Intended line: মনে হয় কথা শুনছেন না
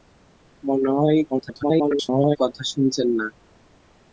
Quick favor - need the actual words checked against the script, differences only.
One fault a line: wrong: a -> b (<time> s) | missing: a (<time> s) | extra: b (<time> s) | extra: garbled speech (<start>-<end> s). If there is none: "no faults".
extra: garbled speech (1.3-2.4 s)